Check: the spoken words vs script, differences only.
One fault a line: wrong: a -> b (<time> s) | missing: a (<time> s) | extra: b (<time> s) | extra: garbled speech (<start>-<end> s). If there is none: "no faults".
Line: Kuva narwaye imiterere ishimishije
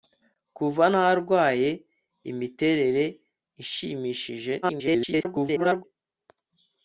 extra: garbled speech (4.6-5.8 s)